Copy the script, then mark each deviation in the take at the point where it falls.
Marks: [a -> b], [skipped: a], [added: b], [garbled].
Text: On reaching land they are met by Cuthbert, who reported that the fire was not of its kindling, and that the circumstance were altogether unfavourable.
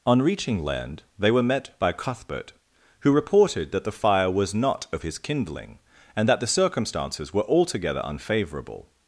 On reaching land they [are -> were] met by Cuthbert, who reported that the fire was not of [its -> his] kindling, and that the [circumstance -> circumstances] were altogether unfavourable.